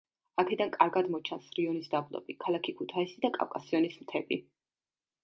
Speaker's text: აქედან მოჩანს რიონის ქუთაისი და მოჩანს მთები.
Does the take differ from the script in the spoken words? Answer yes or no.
yes